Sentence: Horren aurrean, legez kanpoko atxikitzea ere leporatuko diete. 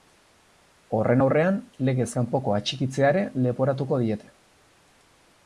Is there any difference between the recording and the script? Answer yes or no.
no